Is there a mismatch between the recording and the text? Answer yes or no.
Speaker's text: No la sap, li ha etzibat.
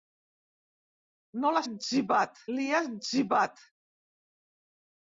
yes